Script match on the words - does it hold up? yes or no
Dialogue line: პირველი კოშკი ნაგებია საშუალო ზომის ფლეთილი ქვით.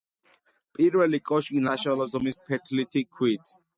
no